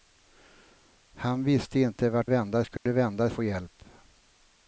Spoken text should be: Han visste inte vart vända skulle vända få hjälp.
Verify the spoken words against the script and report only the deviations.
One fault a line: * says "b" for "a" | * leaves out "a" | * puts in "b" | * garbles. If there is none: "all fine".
all fine